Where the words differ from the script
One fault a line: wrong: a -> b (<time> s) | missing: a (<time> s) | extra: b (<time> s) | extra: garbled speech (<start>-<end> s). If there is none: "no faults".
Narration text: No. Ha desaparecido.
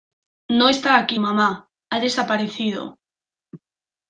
extra: está aquí mamá (0.7 s)